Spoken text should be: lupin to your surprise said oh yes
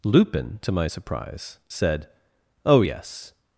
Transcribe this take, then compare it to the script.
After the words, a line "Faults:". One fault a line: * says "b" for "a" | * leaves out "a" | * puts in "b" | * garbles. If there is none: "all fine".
lupin to my surprise said oh yes
Faults:
* says "my" for "your"